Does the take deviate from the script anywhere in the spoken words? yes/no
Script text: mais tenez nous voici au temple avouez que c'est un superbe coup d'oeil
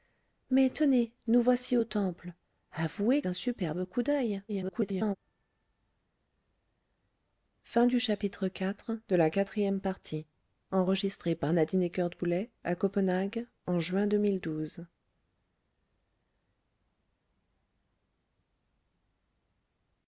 yes